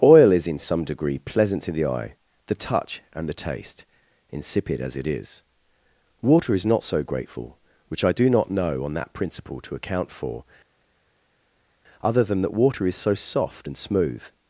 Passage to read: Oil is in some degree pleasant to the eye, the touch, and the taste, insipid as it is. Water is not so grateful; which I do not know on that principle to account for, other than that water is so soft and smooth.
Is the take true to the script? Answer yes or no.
yes